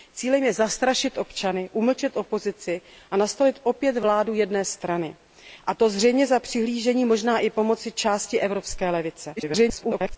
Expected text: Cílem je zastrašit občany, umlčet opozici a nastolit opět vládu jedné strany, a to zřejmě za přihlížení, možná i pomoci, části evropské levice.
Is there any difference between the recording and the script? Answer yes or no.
yes